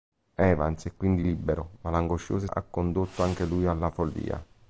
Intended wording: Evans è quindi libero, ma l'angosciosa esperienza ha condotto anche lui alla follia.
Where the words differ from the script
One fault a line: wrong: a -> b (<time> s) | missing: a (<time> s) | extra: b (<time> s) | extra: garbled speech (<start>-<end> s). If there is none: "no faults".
missing: esperienza (2.5 s)